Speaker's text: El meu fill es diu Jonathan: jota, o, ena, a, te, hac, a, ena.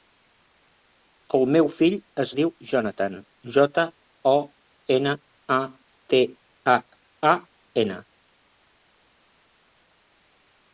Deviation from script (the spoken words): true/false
false